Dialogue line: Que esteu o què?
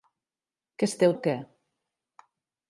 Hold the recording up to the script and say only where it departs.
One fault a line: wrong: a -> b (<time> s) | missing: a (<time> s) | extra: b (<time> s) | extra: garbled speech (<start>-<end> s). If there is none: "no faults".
no faults